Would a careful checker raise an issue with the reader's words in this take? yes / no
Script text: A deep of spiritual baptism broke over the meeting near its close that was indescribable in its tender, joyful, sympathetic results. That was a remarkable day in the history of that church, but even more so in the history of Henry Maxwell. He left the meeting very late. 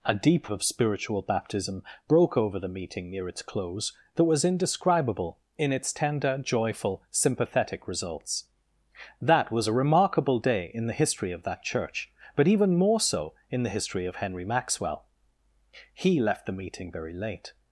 no